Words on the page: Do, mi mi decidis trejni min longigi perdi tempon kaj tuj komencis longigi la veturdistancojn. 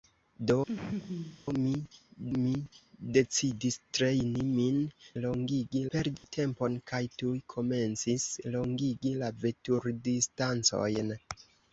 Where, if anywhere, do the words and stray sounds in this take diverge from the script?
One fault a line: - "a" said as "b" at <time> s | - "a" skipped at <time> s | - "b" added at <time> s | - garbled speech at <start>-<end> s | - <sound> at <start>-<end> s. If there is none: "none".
- laugh at 0.7-1.4 s
- dropout at 6.2-6.2 s